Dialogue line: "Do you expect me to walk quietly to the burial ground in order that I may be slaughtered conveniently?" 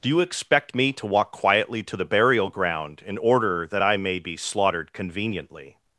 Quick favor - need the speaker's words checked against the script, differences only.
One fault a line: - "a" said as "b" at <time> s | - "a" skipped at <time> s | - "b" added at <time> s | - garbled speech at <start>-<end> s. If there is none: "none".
none